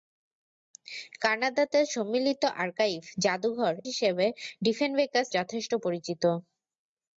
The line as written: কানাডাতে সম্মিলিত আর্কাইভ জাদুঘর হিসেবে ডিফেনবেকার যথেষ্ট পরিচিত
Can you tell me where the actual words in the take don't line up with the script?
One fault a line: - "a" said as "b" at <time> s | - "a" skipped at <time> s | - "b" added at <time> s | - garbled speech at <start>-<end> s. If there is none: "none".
none